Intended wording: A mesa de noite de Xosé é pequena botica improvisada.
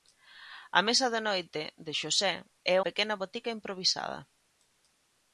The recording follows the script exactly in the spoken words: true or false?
true